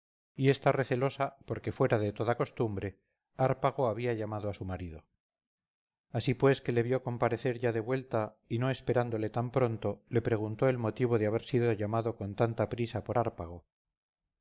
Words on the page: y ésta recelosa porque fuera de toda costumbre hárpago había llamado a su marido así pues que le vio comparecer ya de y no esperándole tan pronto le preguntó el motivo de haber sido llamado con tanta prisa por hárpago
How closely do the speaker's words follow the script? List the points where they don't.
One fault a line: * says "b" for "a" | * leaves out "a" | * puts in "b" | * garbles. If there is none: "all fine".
* puts in "vuelta"